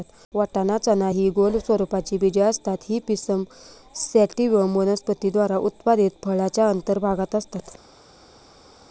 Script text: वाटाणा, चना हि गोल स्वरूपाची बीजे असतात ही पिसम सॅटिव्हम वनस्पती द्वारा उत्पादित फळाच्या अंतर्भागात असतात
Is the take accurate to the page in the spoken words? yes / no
yes